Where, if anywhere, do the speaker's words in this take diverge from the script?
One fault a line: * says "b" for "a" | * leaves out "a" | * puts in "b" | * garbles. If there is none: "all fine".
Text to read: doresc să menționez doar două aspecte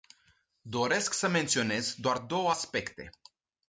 all fine